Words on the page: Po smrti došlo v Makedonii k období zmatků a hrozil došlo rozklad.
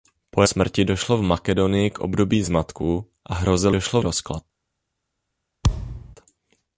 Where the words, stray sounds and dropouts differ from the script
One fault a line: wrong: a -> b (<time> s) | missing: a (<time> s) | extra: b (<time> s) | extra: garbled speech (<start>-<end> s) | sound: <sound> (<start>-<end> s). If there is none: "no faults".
sound: thud (5.6-6.2 s)